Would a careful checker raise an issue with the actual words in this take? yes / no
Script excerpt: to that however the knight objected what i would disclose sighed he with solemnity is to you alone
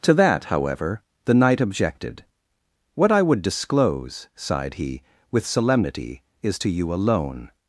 no